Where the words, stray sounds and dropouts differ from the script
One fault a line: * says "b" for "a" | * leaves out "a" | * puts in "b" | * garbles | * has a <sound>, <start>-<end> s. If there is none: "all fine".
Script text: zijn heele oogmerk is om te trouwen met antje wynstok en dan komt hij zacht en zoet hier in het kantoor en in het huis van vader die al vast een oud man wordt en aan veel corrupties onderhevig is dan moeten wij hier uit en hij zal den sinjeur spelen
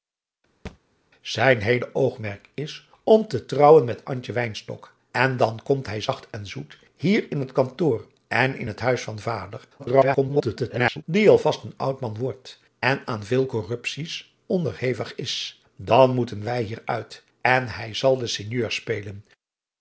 * has a thud, 0.7-0.8 s
* garbles